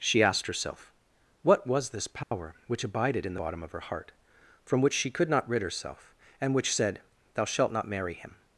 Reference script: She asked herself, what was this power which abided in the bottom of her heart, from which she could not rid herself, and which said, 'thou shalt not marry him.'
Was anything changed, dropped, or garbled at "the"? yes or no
yes